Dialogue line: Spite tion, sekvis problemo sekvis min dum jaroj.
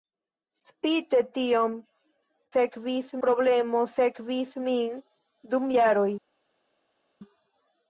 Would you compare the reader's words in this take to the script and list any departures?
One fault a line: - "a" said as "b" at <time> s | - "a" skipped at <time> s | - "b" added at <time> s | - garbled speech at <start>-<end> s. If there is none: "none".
none